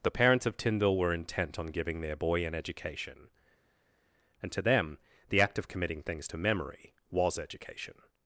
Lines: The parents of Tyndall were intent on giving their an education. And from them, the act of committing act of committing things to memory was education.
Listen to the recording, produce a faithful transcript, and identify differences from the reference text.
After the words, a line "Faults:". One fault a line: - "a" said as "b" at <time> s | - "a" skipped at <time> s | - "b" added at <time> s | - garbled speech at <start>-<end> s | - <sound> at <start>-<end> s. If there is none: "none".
The parents of Tyndall were intent on giving their boy an education. And to them, the act of committing things to memory was education.
Faults:
- "boy" added at 2.1 s
- "from" said as "to" at 4.5 s
- "act of committing" skipped at 6.0 s